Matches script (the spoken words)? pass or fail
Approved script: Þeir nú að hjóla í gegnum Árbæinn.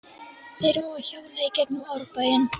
pass